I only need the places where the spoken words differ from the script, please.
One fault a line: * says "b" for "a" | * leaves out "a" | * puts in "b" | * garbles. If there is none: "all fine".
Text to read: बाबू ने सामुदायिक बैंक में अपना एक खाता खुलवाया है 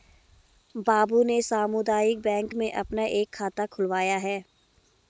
all fine